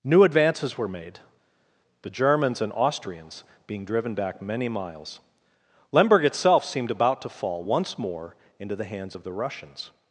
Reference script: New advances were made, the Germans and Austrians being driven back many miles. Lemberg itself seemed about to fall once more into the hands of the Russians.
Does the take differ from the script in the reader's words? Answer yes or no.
no